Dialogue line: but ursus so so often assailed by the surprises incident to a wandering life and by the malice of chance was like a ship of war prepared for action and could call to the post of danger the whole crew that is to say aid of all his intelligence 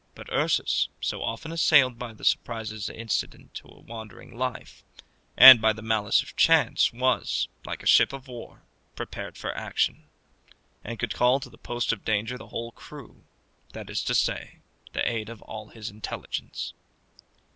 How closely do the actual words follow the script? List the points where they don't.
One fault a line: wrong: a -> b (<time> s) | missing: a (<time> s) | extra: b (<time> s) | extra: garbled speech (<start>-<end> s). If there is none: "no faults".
missing: so (1.2 s)
extra: the (14.9 s)